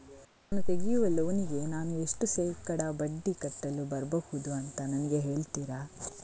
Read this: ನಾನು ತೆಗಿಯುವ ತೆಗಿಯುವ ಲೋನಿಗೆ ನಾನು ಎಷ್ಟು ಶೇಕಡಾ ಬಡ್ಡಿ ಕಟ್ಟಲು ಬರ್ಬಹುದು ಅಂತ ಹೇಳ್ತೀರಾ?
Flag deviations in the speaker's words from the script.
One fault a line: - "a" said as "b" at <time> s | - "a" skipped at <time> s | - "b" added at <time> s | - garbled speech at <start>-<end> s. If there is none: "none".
- "ತೆಗಿಯುವ" skipped at 1.1 s
- "ನನಗೆ" added at 4.9 s